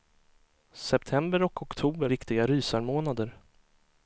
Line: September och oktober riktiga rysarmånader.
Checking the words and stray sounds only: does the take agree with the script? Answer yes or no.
yes